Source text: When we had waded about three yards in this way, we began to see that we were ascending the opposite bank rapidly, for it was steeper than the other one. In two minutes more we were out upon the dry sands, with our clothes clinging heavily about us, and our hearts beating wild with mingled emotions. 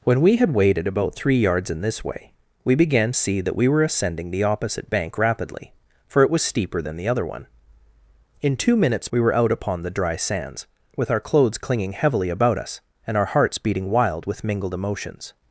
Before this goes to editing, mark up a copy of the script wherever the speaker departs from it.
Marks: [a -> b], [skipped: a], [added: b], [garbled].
When we had waded about three yards in this way, we began [skipped: to] see that we were ascending the opposite bank rapidly, for it was steeper than the other one. In two minutes [skipped: more] we were out upon the dry sands, with our clothes clinging heavily about us, and our hearts beating wild with mingled emotions.